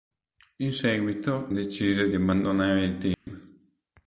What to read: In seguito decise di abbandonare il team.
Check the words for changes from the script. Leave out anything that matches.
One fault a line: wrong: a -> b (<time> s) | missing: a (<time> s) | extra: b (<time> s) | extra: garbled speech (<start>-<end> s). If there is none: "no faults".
no faults